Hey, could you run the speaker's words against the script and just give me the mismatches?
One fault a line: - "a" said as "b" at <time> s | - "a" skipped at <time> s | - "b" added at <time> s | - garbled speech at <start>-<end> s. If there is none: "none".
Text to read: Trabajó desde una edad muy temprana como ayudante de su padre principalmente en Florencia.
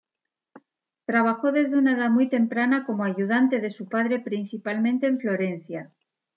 none